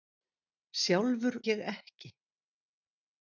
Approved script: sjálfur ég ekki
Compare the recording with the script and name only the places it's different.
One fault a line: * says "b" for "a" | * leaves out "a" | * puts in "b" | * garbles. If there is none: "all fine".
all fine